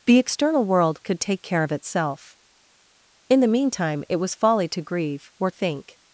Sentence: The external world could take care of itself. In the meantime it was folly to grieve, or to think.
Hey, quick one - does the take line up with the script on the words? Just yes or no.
no